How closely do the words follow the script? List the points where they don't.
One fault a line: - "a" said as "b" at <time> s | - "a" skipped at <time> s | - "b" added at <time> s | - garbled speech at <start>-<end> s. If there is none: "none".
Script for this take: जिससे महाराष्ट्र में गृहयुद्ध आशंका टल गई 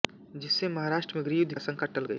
none